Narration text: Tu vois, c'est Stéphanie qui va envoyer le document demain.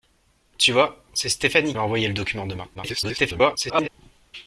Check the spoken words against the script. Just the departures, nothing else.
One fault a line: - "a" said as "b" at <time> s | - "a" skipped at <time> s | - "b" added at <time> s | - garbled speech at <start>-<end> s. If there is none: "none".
- "qui" skipped at 1.7 s
- garbled speech at 2.7-3.9 s